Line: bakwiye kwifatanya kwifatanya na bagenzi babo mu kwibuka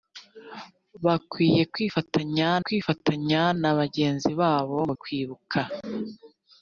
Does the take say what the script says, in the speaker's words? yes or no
yes